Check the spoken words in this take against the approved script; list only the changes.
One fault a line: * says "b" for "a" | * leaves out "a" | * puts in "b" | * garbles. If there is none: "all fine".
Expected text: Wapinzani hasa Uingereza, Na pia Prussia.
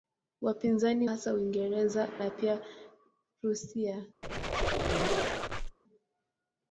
all fine